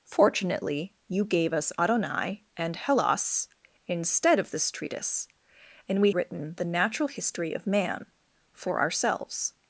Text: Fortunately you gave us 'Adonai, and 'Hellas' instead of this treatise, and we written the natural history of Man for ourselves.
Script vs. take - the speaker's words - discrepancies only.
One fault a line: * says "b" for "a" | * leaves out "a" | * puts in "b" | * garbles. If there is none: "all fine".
all fine